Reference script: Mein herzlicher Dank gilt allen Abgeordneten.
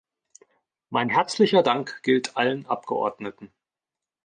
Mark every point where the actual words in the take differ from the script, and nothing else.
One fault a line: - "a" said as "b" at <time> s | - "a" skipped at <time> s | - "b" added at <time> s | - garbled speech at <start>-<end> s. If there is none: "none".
none